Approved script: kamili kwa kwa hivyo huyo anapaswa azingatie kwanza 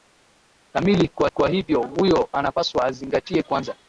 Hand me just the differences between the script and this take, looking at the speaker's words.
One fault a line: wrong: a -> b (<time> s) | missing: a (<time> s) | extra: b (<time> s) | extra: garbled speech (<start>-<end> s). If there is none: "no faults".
no faults